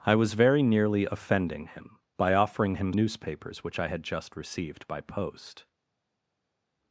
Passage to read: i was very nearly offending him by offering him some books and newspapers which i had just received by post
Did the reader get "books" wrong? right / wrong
wrong